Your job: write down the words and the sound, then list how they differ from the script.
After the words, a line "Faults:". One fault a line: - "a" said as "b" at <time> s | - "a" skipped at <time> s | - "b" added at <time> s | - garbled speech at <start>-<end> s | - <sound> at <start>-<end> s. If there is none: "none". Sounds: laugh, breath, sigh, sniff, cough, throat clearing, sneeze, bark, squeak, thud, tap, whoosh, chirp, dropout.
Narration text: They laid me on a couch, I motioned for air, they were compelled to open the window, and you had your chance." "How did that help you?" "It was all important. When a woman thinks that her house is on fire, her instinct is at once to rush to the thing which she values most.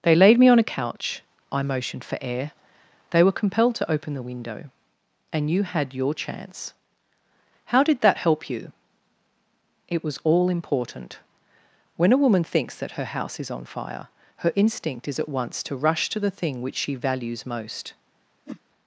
They laid me on a couch, I motioned for air, they were compelled to open the window, and you had your chance." "How did that help you?" "It was all important. When a woman thinks that her house is on fire, her instinct is at once to rush to the thing which she values most.
Faults:
- whoosh at 18.5-18.6 s